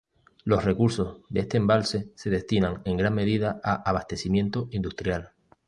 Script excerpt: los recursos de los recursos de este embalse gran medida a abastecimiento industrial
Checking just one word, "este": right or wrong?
wrong